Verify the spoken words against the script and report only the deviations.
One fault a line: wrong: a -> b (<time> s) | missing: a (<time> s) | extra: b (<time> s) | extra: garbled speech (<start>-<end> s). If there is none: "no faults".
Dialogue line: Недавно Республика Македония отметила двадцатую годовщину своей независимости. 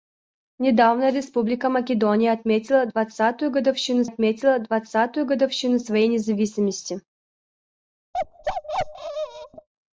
extra: отметила двадцатую годовщину (4.0 s)